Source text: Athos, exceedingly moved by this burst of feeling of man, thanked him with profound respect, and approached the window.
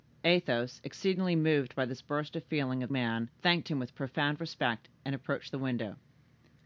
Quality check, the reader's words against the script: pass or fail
pass